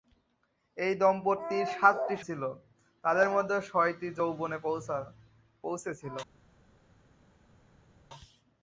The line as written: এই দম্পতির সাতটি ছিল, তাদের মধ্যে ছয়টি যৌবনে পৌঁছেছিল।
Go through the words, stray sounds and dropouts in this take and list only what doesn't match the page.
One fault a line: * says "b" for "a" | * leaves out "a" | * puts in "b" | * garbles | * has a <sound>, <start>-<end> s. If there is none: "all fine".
all fine